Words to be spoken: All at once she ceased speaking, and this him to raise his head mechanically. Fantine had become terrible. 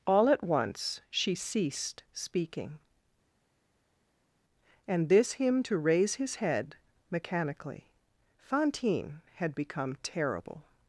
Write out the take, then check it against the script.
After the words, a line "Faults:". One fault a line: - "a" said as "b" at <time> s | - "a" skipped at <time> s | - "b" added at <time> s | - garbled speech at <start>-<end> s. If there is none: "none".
All at once she ceased speaking, and this him to raise his head mechanically. Fantine had become terrible.
Faults:
none